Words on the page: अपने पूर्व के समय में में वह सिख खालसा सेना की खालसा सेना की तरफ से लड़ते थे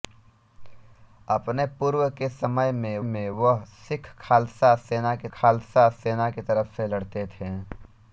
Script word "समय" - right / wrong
right